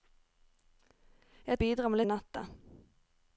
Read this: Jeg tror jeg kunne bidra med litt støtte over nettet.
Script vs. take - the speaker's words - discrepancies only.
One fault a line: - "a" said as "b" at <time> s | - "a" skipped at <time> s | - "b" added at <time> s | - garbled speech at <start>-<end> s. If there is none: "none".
- "tror jeg kunne" skipped at 1.6 s
- "litt støtte over" skipped at 2.0 s